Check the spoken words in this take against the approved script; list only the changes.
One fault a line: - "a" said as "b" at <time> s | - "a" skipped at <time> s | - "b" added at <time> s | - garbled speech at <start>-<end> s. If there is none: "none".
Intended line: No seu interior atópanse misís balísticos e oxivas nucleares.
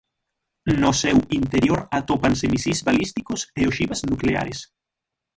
none